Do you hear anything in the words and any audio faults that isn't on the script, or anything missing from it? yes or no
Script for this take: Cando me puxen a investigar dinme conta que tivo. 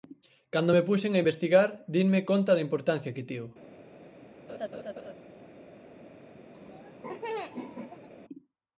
yes